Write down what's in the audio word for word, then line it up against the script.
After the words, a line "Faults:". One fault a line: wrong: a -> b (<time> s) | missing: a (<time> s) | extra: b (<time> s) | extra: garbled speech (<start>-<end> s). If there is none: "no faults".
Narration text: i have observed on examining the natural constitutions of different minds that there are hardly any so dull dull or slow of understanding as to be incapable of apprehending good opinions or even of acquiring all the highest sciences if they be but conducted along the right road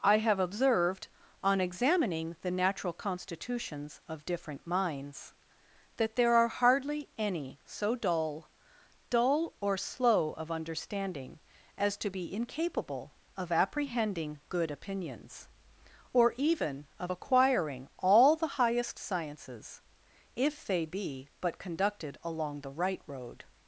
i have observed on examining the natural constitutions of different minds that there are hardly any so dull dull or slow of understanding as to be incapable of apprehending good opinions or even of acquiring all the highest sciences if they be but conducted along the right road
Faults:
no faults